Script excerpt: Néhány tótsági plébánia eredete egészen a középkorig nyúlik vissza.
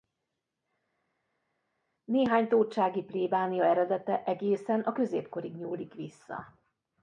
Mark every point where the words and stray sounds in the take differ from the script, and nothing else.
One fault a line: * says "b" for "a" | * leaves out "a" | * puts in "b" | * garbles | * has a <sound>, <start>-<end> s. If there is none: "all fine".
all fine